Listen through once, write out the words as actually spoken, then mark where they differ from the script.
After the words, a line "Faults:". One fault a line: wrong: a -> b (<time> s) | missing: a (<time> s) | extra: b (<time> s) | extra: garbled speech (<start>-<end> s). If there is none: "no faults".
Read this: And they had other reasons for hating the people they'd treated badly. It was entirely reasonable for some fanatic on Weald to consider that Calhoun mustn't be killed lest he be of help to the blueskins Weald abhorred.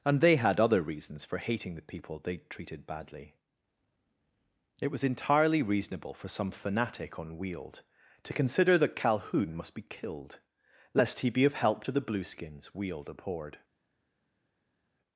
And they had other reasons for hating the people they'd treated badly. It was entirely reasonable for some fanatic on Weald to consider that Calhoun must be killed lest he be of help to the blueskins Weald abhorred.
Faults:
wrong: mustn't -> must (9.6 s)